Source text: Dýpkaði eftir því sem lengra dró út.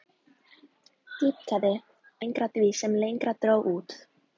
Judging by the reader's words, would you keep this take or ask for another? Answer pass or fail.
fail